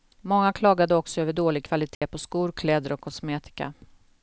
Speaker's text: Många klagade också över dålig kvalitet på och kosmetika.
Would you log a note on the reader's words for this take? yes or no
yes